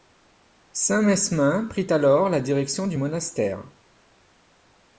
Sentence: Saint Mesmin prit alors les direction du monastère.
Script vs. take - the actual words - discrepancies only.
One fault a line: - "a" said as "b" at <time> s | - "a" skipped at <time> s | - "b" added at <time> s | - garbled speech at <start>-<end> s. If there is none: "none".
- "les" said as "la" at 2.3 s